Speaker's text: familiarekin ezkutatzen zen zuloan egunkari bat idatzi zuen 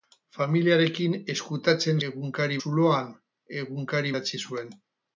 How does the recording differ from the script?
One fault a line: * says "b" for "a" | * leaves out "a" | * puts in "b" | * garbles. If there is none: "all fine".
* says "egunkari" for "zen"
* leaves out "bat"